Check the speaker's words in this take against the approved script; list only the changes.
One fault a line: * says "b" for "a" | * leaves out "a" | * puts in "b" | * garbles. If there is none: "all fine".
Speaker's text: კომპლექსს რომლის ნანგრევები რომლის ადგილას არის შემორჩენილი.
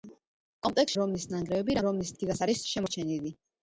all fine